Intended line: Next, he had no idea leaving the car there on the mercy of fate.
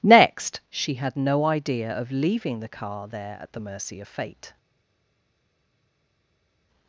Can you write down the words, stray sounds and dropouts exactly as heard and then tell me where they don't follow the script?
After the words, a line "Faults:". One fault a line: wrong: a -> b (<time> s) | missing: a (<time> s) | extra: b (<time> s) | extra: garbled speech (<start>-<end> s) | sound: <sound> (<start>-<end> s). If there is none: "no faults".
Next, she had no idea of leaving the car there at the mercy of fate.
Faults:
wrong: he -> she (0.7 s)
extra: of (1.9 s)
wrong: on -> at (3.4 s)